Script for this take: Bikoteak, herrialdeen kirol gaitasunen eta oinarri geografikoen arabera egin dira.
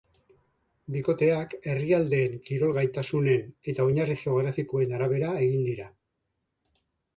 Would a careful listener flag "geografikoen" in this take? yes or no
no